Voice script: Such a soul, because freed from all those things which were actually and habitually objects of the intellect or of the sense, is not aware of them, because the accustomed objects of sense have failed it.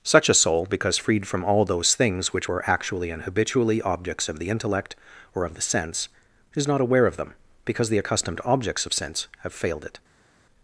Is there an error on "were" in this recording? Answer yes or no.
no